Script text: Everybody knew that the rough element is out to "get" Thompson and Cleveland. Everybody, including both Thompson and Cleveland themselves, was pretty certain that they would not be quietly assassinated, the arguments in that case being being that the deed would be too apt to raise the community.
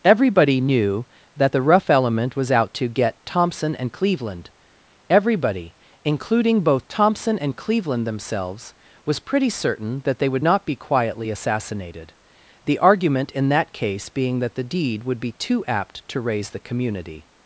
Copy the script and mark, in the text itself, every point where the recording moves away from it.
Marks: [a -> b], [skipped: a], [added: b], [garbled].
Everybody knew that the rough element [is -> was] out to "get" Thompson and Cleveland. Everybody, including both Thompson and Cleveland themselves, was pretty certain that they would not be quietly assassinated, the [arguments -> argument] in that case being [skipped: being] that the deed would be too apt to raise the community.